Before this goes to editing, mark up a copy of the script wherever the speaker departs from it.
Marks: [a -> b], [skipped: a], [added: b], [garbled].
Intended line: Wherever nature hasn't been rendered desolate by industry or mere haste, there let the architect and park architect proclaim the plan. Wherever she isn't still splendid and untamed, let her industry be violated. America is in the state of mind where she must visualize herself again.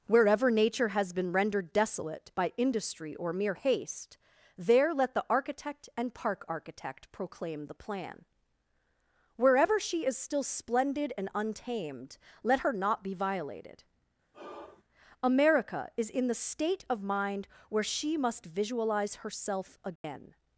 Wherever nature [hasn't -> has] been rendered desolate by industry or mere haste, there let the architect and park architect proclaim the plan. Wherever she [isn't -> is] still splendid and untamed, let her [industry -> not] be violated. America is in the state of mind where she must visualize herself again.